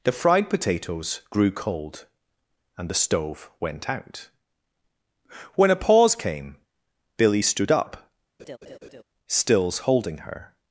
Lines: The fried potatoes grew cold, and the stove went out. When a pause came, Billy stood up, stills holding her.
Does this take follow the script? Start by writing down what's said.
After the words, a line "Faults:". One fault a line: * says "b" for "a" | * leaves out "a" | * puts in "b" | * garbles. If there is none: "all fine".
The fried potatoes grew cold, and the stove went out. When a pause came, Billy stood up, stills holding her.
Faults:
all fine